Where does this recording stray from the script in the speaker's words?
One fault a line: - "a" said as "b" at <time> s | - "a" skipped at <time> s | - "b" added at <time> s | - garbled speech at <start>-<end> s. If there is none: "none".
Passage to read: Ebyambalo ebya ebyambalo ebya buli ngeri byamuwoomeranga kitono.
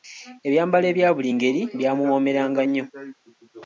- "ebyambalo ebya" skipped at 1.1 s
- "kitono" said as "nnyo" at 2.6 s